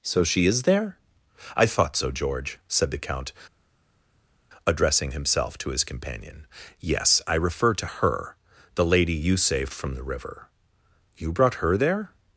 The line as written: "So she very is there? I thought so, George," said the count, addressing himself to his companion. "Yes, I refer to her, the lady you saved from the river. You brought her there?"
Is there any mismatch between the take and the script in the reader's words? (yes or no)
yes